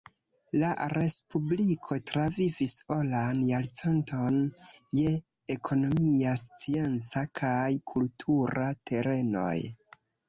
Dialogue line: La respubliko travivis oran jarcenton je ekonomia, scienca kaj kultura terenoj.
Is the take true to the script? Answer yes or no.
yes